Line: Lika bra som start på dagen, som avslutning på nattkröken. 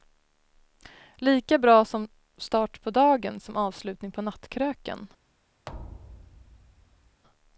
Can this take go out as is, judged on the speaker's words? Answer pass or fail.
pass